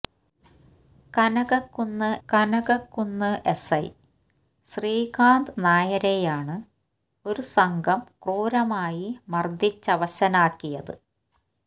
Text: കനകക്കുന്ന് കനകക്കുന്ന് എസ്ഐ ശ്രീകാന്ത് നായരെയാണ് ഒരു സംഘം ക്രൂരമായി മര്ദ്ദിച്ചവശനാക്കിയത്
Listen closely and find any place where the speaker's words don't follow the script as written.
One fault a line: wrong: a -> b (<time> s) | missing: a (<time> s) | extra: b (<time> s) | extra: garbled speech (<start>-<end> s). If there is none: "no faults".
no faults